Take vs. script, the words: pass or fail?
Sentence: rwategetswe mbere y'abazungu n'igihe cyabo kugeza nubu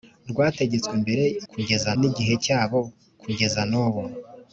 fail